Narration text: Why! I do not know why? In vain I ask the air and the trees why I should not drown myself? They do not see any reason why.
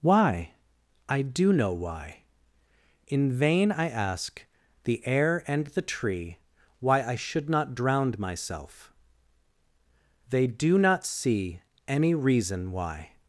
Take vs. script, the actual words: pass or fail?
fail